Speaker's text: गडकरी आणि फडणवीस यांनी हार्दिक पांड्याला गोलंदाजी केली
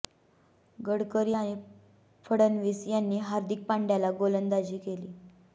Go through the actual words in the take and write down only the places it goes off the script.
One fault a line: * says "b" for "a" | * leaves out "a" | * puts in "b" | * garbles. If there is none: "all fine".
all fine